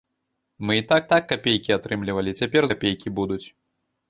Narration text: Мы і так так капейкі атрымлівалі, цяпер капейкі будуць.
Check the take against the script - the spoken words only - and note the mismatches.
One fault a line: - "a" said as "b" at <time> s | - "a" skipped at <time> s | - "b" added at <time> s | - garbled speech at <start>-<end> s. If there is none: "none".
none